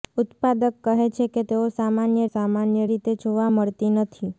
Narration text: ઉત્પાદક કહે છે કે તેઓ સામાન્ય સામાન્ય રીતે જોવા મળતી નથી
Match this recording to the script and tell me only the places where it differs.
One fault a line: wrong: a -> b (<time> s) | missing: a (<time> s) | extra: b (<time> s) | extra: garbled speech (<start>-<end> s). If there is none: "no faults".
no faults